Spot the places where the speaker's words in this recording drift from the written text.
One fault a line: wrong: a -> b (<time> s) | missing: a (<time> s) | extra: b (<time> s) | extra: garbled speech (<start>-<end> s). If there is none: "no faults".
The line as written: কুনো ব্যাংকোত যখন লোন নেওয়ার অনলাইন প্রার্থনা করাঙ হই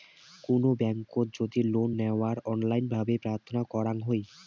wrong: যখন -> যদি (1.4 s)
extra: ভাবে (2.9 s)